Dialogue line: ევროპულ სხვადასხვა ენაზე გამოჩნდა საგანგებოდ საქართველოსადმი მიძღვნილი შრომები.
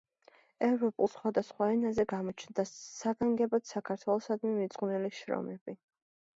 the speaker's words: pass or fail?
pass